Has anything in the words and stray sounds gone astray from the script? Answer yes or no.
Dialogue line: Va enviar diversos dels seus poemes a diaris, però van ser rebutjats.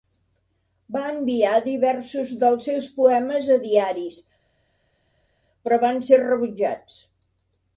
no